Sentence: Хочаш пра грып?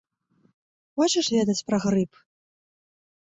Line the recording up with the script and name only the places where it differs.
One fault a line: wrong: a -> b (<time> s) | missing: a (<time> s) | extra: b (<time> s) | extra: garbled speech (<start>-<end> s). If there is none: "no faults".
extra: ведаць (1.4 s)